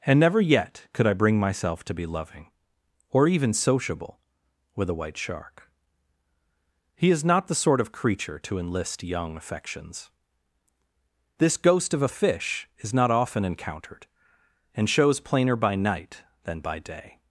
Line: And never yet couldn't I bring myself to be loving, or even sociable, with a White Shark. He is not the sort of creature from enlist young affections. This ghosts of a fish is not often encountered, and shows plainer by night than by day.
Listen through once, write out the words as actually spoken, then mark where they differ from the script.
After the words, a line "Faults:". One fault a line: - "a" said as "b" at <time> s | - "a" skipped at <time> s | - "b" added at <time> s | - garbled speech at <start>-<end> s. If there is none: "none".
And never yet could I bring myself to be loving, or even sociable, with a White Shark. He is not the sort of creature to enlist young affections. This ghost of a fish is not often encountered, and shows plainer by night than by day.
Faults:
- "couldn't" said as "could" at 0.9 s
- "from" said as "to" at 8.4 s
- "ghosts" said as "ghost" at 11.6 s